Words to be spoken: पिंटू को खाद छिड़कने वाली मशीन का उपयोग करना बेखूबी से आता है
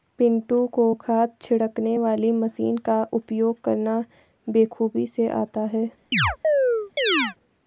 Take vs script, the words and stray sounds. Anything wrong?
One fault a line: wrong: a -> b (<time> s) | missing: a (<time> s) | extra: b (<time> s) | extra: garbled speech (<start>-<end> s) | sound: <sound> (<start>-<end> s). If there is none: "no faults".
sound: chirp (6.1-7.4 s)